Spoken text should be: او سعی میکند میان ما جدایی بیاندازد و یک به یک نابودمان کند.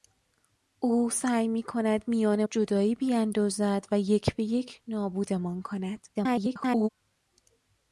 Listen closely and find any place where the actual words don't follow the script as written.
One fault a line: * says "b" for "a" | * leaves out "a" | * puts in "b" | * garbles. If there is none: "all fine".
* leaves out "ما"
* garbles